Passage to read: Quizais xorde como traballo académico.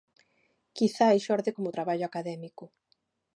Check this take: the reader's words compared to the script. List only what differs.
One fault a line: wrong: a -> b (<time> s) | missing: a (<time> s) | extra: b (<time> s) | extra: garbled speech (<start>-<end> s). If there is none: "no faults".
no faults